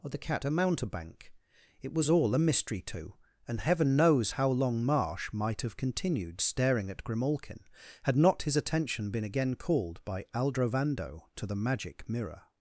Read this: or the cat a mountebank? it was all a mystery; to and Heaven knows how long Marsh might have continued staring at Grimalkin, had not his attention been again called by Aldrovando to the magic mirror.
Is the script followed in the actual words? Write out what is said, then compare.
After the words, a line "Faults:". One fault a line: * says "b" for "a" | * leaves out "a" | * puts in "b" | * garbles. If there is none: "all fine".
or the cat a mountebank? it was all a mystery; to and Heaven knows how long Marsh might have continued staring at Grimalkin, had not his attention been again called by Aldrovando to the magic mirror.
Faults:
all fine